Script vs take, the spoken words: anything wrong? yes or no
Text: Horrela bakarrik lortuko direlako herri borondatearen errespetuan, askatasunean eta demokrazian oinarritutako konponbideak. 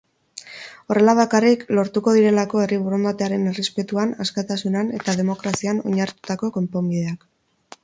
no